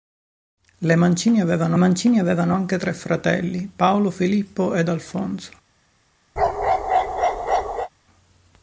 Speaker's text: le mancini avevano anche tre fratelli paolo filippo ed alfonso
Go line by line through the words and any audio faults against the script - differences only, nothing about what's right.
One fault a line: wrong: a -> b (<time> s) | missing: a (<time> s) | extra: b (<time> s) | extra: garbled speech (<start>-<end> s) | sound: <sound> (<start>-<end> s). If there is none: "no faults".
extra: mancini avevano (1.8 s)
sound: bark (6.4-7.9 s)